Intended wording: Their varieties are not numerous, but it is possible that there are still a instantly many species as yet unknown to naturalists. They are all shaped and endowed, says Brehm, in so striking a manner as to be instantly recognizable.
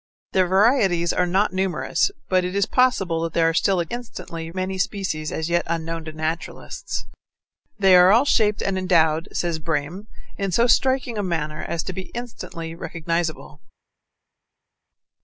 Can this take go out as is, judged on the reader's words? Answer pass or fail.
pass